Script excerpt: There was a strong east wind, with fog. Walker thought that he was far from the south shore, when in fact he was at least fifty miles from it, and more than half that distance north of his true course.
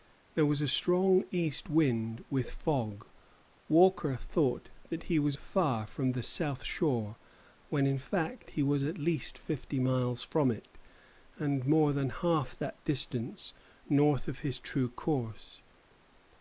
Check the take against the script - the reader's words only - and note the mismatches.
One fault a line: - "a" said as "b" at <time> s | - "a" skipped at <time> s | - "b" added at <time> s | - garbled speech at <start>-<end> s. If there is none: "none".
none